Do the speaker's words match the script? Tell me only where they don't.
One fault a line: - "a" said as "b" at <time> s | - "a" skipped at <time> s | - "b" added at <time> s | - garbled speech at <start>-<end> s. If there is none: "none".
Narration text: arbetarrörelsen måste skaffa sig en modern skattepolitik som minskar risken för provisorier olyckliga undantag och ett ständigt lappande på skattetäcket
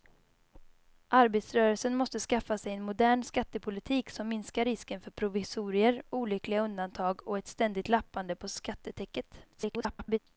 - garbled speech at 9.5-10.2 s